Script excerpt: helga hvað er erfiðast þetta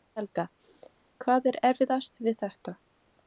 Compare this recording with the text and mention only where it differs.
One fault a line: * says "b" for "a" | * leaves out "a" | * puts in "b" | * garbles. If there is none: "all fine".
* puts in "við"